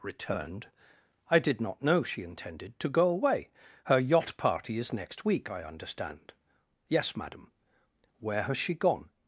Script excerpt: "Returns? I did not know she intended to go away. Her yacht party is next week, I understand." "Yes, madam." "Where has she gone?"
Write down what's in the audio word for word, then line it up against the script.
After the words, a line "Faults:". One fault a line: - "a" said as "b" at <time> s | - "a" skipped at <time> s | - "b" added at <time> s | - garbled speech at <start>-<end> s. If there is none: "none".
"Returned? I did not know she intended to go away. Her yacht party is next week, I understand." "Yes, madam." "Where has she gone?"
Faults:
- "Returns" said as "Returned" at 0.0 s